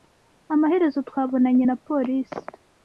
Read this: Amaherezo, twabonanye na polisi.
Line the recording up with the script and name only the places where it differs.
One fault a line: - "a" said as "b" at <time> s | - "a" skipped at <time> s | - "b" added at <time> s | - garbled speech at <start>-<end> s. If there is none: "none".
none